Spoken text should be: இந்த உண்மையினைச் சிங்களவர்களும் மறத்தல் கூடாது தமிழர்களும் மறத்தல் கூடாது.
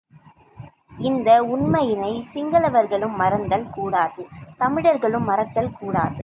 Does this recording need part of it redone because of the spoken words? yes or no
no